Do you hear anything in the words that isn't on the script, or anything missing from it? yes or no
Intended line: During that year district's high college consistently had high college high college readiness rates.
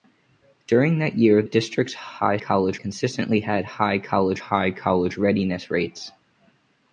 no